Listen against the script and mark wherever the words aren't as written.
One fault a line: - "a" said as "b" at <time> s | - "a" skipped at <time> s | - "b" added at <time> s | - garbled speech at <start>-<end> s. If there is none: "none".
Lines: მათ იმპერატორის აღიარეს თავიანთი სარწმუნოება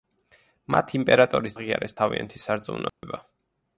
none